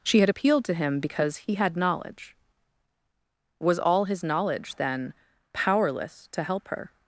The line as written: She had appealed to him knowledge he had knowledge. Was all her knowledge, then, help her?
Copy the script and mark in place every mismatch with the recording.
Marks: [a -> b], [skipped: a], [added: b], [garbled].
She had appealed to him [knowledge -> because] he had knowledge. Was all [her -> his] knowledge, then, [added: powerless to] help her?